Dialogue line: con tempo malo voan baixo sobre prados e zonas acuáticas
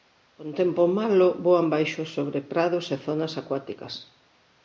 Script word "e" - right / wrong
right